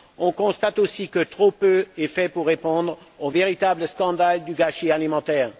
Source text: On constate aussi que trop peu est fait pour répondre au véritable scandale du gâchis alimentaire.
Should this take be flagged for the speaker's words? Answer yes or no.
no